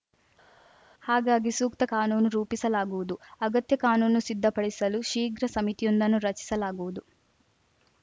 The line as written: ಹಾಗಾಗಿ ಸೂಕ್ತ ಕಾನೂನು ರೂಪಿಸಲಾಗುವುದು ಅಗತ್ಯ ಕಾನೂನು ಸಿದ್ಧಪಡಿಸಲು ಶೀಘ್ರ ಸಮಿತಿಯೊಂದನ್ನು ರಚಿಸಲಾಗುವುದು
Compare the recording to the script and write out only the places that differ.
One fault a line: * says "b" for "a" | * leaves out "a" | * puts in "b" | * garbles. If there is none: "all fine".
all fine